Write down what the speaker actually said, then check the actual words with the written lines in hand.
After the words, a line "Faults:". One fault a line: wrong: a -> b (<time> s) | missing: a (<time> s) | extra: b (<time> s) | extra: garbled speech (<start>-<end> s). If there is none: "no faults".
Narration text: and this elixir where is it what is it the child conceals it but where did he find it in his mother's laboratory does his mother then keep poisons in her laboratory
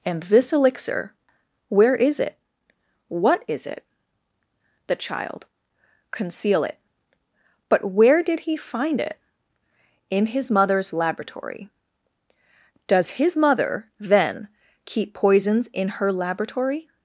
and this elixir where is it what is it the child conceal it but where did he find it in his mother's laboratory does his mother then keep poisons in her laboratory
Faults:
wrong: conceals -> conceal (6.1 s)